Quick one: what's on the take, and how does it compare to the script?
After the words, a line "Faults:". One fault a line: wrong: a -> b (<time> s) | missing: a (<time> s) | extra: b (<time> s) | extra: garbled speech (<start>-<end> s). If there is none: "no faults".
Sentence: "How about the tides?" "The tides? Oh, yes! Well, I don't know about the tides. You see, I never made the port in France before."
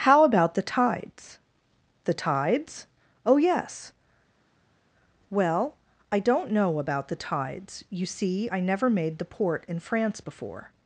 "How about the tides?" "The tides? Oh, yes! Well, I don't know about the tides. You see, I never made the port in France before."
Faults:
no faults